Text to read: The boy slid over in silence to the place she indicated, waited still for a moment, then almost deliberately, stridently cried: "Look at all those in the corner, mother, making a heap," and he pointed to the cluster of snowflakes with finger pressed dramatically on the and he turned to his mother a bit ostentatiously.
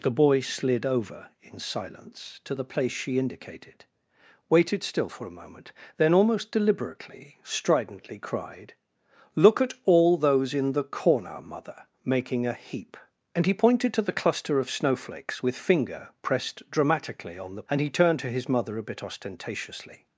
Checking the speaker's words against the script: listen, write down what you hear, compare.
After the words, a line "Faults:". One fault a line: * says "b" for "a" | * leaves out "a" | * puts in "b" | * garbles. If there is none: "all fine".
The boy slid over in silence to the place she indicated, waited still for a moment, then almost deliberately, stridently cried: "Look at all those in the corner, mother, making a heap," and he pointed to the cluster of snowflakes with finger pressed dramatically on the and he turned to his mother a bit ostentatiously.
Faults:
all fine